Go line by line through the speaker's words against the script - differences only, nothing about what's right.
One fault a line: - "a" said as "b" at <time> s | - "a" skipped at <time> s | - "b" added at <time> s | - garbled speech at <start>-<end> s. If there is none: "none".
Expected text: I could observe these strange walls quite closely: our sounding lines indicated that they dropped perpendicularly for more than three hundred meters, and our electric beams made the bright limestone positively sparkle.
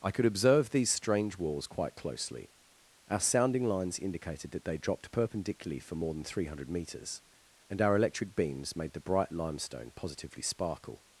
none